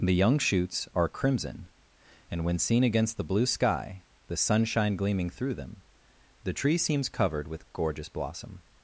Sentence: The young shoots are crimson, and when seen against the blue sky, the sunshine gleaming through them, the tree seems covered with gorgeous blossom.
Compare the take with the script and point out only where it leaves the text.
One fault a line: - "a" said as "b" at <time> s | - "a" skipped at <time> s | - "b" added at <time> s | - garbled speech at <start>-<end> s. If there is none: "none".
none